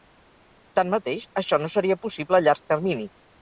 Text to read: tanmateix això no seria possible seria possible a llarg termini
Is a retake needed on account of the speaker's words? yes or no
yes